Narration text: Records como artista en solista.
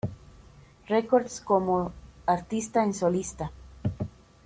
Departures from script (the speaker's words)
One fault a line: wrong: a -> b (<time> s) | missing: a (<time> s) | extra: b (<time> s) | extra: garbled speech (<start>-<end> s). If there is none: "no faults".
no faults